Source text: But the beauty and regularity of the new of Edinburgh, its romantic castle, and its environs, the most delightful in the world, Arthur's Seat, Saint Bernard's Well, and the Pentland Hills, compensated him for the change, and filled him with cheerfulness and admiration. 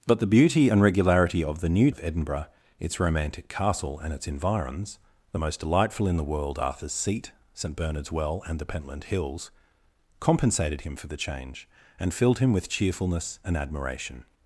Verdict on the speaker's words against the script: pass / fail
pass